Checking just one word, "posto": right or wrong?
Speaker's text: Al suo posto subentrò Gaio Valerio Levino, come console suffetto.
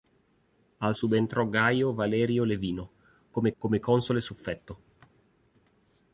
wrong